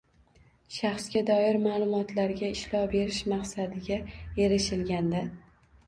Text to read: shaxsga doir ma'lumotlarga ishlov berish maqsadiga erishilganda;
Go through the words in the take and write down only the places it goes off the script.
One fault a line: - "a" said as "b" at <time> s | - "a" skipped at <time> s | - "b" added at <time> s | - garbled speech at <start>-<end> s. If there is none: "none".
none